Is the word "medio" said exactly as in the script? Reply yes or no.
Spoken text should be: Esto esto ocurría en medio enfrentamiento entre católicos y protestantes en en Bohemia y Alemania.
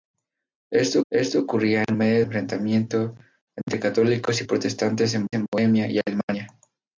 yes